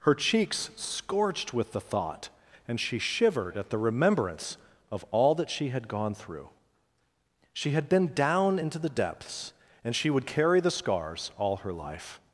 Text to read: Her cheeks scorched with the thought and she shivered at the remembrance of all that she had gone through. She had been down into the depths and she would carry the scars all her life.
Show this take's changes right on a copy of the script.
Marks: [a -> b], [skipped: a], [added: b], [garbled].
Her cheeks scorched with the thought and she shivered at the remembrance of all that she had gone through. She had been down into the depths and she would carry the scars all her life.